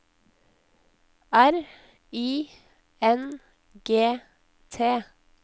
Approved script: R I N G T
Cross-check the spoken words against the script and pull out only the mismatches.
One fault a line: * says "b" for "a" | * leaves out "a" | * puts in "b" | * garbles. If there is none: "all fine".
all fine